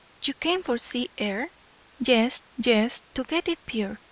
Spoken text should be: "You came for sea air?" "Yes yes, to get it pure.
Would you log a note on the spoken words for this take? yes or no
no